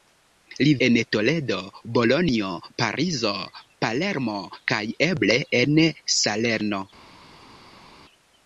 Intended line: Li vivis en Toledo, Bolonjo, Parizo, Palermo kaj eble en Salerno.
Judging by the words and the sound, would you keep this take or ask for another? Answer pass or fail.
fail